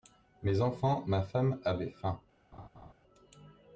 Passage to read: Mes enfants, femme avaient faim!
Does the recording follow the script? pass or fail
fail